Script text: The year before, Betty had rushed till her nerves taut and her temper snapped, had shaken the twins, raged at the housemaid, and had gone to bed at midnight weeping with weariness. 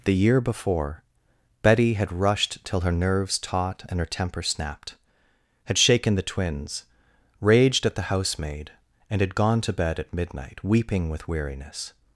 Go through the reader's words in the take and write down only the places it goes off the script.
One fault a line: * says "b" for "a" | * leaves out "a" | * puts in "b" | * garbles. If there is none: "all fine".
all fine